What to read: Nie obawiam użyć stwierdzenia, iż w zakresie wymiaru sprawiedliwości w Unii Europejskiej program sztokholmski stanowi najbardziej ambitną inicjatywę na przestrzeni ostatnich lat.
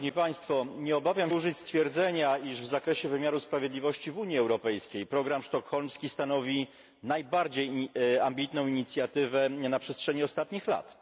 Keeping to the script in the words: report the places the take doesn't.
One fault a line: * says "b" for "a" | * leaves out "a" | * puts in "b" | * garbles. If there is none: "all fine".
all fine